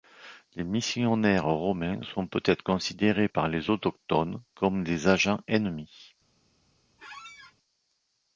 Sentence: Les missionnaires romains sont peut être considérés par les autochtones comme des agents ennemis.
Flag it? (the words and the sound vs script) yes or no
yes